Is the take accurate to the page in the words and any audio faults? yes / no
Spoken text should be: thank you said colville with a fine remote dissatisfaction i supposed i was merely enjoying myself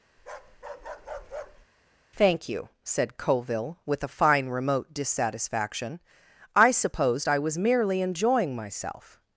no